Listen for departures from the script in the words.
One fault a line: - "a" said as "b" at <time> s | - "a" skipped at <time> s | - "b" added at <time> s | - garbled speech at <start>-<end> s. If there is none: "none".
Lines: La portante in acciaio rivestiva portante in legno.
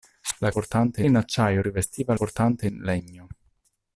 none